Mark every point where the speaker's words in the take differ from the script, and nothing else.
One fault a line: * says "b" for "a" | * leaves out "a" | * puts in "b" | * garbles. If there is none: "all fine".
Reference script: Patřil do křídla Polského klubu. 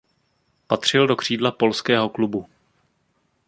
all fine